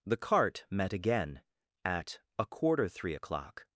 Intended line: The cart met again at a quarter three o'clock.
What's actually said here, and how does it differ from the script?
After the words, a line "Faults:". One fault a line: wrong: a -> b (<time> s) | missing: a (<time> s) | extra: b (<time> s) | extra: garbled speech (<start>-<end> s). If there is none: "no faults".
The cart met again at a quarter three o'clock.
Faults:
no faults